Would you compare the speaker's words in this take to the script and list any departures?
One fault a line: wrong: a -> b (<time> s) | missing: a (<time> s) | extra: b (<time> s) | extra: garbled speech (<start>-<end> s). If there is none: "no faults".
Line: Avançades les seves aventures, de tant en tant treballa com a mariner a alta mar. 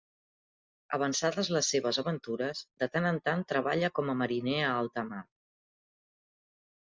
no faults